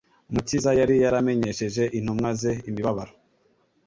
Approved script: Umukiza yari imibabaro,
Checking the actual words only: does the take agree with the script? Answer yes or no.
no